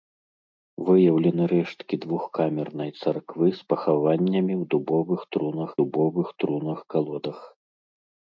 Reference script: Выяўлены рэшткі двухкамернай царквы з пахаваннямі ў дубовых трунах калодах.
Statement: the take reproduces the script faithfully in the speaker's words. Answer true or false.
false